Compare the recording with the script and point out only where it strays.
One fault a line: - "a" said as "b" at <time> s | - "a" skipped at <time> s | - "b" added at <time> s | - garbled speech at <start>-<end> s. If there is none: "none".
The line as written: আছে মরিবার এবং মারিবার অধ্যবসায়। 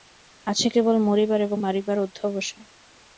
- "কেবল" added at 0.7 s